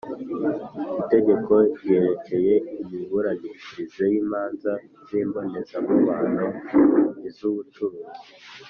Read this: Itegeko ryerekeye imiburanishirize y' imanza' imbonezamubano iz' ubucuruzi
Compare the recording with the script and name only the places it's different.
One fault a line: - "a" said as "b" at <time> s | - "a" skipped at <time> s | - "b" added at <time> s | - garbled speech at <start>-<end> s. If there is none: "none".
- "z" added at 5.1 s